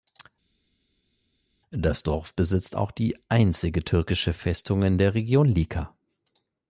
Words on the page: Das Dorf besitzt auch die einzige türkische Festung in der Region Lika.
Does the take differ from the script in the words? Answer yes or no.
no